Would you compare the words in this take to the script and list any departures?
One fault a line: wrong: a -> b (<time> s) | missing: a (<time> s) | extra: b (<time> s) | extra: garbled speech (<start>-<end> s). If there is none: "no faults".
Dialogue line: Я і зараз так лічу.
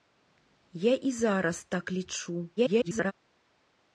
extra: garbled speech (2.6-3.1 s)